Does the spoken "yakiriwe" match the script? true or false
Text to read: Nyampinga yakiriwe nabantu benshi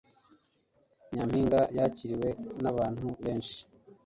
true